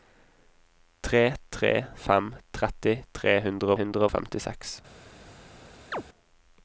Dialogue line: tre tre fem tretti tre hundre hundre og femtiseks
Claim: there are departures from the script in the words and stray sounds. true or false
true